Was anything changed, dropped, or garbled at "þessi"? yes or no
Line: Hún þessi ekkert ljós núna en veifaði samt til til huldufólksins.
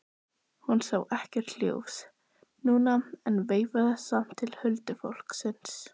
yes